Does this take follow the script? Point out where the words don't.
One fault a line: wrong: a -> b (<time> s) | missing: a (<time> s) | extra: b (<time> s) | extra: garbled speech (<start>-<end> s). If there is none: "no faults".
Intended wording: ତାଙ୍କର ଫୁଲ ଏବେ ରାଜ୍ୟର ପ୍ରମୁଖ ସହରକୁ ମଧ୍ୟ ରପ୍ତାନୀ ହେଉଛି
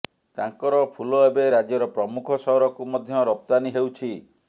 no faults